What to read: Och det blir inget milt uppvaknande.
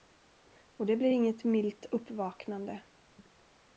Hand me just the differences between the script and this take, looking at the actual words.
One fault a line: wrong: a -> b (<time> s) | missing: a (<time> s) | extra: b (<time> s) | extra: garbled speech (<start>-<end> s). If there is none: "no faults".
no faults